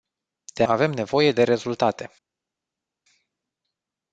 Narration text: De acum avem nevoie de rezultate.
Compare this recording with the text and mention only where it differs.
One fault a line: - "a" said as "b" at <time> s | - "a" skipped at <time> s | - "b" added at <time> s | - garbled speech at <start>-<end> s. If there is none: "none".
- "acum" skipped at 0.6 s